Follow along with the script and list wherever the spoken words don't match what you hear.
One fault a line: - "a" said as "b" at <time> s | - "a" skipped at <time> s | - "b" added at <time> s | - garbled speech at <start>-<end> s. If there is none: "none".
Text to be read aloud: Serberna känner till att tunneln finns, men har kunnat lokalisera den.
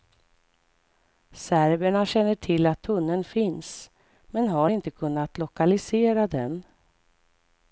- "inte" added at 4.7 s